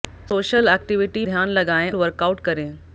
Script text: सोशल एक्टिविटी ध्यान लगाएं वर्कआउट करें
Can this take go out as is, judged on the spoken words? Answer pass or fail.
pass